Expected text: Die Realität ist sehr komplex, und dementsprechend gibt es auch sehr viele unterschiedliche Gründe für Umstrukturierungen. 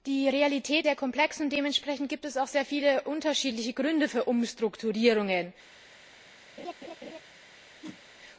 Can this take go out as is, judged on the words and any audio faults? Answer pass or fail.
fail